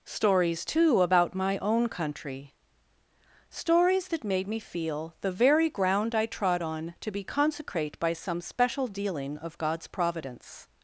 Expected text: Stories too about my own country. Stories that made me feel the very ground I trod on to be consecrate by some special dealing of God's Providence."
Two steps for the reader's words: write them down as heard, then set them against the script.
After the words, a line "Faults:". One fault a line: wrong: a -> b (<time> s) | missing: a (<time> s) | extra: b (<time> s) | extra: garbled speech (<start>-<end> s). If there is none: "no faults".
Stories too about my own country. Stories that made me feel the very ground I trod on to be consecrate by some special dealing of God's Providence."
Faults:
no faults